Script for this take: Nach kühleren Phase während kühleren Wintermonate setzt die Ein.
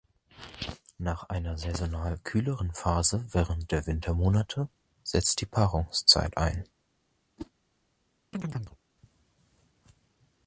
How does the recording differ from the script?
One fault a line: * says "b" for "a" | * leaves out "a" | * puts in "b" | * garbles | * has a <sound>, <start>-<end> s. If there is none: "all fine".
* puts in "einer saisonal"
* says "der" for "kühleren"
* puts in "Paarungszeit"
* has a whoosh, 7.4-7.5 s
* has a chirp, 8.3-8.8 s